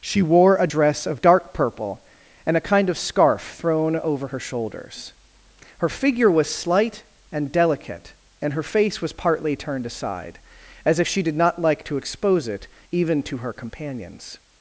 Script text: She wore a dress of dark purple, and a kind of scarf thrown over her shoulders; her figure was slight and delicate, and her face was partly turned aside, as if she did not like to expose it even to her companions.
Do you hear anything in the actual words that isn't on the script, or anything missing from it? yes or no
no